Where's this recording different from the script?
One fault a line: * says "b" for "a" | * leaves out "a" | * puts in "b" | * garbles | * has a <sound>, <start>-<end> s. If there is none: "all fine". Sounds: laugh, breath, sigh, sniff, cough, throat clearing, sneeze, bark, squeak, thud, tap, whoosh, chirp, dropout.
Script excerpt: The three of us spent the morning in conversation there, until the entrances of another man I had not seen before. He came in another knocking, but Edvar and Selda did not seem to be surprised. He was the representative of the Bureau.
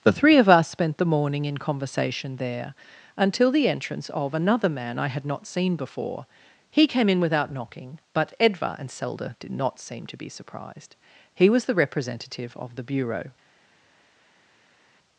* says "entrance" for "entrances"
* says "without" for "another"